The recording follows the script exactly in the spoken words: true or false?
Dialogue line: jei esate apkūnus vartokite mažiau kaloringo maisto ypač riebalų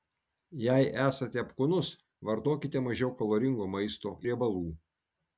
false